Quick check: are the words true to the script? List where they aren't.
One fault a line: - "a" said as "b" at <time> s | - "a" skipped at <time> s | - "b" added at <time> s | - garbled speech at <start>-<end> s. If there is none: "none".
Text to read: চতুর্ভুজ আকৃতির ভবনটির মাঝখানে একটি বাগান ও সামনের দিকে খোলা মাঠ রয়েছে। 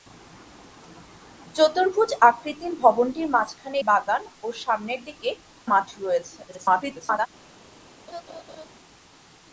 - "একটি" skipped at 3.8 s
- "খোলা" skipped at 5.3 s
- garbled speech at 6.5-7.3 s